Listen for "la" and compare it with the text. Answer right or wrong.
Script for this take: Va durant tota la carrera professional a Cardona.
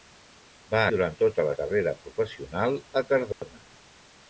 right